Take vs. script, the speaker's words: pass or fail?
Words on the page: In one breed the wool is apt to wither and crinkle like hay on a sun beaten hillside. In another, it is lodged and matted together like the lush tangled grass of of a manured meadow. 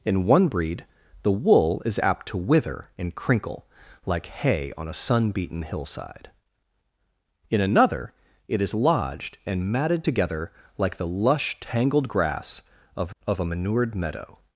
pass